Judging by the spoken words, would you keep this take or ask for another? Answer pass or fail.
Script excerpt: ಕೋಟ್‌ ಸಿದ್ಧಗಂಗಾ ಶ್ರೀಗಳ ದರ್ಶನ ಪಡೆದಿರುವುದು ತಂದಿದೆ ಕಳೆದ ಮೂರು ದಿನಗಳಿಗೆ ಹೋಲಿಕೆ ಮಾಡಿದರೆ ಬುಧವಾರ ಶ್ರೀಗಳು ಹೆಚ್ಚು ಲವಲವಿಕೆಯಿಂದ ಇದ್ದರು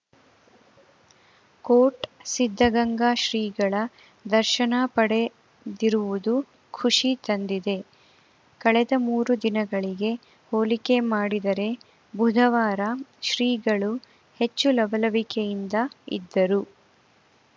fail